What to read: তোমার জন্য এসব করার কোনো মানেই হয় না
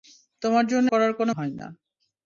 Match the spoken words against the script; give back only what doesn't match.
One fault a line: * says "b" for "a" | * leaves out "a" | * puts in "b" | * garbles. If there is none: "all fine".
* leaves out "এসব"
* leaves out "মানেই"